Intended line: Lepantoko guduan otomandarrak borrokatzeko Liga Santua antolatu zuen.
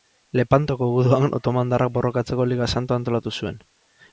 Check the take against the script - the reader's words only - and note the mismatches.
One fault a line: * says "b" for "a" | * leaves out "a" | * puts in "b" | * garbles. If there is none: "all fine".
all fine